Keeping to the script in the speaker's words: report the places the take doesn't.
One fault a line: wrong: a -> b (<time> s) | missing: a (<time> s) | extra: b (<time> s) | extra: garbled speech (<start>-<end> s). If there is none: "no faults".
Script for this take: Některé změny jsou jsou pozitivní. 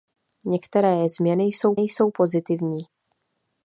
no faults